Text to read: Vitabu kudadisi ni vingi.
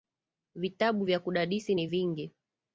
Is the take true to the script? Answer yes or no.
no